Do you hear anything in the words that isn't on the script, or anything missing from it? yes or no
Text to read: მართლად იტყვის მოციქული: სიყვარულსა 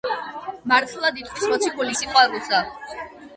no